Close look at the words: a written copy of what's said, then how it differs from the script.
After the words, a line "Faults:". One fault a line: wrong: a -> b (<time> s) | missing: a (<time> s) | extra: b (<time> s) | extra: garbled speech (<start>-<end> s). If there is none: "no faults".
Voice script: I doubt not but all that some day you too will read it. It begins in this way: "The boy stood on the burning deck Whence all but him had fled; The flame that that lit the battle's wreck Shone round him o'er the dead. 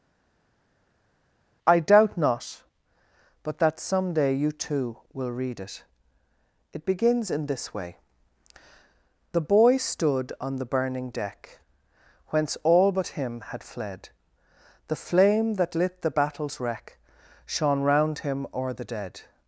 I doubt not but that some day you too will read it. It begins in this way: "The boy stood on the burning deck Whence all but him had fled; The flame that lit the battle's wreck Shone round him o'er the dead.
Faults:
missing: all (3.6 s)
missing: that (15.7 s)